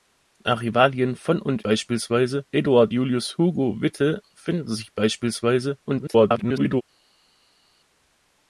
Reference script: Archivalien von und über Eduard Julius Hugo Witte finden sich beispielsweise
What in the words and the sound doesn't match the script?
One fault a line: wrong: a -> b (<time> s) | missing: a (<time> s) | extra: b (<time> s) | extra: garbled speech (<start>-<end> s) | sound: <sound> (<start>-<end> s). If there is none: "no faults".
wrong: über -> beispielsweise (1.6 s)
extra: garbled speech (5.9-6.8 s)